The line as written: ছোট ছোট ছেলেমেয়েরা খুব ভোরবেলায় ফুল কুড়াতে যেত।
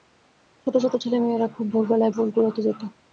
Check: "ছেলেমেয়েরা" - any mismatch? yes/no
no